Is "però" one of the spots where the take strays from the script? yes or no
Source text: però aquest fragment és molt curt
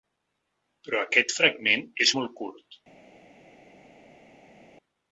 no